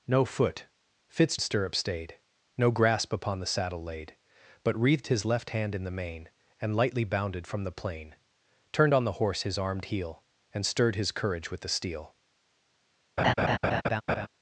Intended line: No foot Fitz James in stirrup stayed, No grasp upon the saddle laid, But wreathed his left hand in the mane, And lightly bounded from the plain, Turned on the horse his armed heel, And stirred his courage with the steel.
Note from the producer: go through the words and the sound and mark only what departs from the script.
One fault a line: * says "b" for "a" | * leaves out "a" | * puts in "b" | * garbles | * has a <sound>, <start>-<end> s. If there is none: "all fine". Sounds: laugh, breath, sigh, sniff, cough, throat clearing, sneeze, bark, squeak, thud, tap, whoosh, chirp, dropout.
* leaves out "James in"
* has a laugh, 13.2-14.3 s